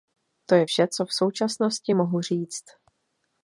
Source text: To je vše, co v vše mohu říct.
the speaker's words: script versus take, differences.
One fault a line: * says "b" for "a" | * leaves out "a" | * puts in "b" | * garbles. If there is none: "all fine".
* says "současnosti" for "vše"